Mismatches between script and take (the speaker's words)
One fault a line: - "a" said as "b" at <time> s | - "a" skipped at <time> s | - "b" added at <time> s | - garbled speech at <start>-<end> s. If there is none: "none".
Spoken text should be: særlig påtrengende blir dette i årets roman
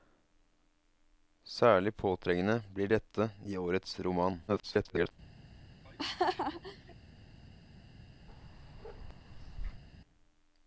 - garbled speech at 4.5-5.1 s